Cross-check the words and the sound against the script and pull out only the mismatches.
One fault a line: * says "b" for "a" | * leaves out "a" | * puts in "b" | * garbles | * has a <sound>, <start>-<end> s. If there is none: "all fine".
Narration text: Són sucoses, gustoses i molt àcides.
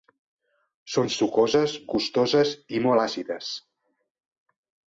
all fine